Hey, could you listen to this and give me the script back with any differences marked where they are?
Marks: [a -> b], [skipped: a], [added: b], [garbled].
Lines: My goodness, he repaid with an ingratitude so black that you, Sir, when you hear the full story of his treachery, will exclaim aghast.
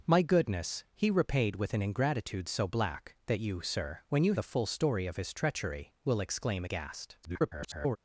My goodness, he repaid with an ingratitude so black that you, Sir, when you [skipped: hear] the full story of his treachery, will exclaim aghast. [garbled]